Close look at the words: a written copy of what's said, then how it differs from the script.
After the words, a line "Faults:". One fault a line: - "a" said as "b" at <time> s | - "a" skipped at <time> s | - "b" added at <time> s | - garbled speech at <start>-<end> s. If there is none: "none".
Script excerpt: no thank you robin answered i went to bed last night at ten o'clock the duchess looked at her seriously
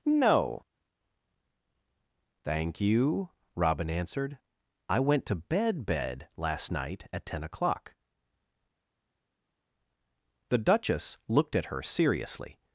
no thank you robin answered i went to bed bed last night at ten o'clock the duchess looked at her seriously
Faults:
- "bed" added at 5.9 s